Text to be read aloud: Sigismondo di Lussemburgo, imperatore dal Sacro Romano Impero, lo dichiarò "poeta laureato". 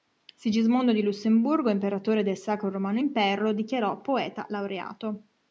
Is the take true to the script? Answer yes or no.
no